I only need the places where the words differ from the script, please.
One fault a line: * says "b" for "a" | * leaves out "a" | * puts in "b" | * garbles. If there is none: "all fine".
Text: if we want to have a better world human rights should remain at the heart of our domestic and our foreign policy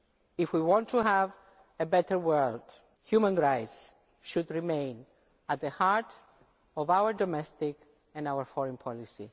all fine